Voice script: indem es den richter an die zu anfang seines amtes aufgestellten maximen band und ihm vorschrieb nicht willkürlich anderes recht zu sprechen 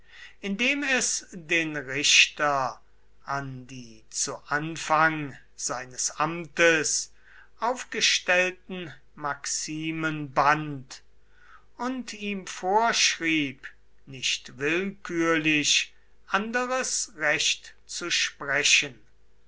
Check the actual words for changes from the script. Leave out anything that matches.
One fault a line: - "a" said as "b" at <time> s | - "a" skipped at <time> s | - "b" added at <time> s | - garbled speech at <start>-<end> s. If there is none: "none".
none